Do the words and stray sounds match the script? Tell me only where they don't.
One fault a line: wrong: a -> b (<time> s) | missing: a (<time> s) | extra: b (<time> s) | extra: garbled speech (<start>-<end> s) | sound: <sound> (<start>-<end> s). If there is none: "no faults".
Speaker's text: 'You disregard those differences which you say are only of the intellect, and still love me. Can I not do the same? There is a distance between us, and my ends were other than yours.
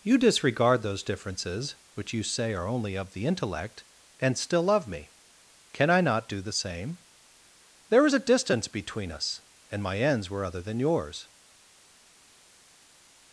no faults